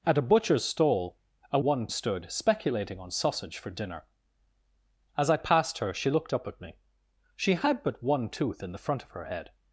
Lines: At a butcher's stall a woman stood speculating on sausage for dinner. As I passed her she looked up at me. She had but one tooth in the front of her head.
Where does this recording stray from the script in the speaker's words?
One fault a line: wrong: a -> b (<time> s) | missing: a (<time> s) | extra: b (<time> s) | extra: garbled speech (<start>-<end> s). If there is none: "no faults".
wrong: woman -> one (1.6 s)